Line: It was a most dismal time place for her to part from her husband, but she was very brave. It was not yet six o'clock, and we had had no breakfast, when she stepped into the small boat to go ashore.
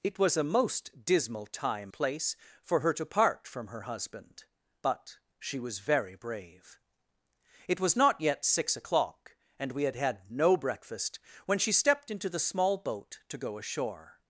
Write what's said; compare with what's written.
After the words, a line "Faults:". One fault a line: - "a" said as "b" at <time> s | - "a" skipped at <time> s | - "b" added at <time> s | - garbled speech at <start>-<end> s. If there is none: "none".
It was a most dismal time place for her to part from her husband, but she was very brave. It was not yet six o'clock, and we had had no breakfast, when she stepped into the small boat to go ashore.
Faults:
none